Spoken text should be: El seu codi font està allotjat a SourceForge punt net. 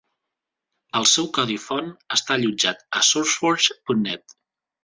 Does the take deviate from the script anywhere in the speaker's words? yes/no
no